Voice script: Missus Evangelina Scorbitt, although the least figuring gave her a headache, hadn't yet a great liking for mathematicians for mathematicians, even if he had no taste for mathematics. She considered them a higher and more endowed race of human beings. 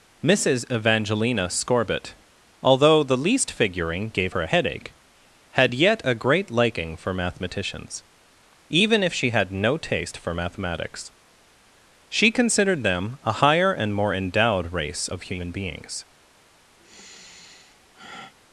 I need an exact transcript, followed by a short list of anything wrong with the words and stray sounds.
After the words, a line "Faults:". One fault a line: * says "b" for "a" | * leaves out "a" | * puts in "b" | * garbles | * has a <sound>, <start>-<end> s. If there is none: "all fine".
Missus Evangelina Scorbitt, although the least figuring gave her a headache, had yet a great liking for mathematicians, even if she had no taste for mathematics. She considered them a higher and more endowed race of human beings.
Faults:
* says "had" for "hadn't"
* leaves out "for mathematicians"
* says "she" for "he"
* has a sigh, 16.8-18.3 s